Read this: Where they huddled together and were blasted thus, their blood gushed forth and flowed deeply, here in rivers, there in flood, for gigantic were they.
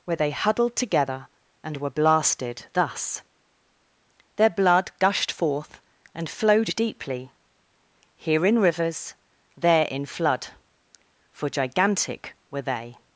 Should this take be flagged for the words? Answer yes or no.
no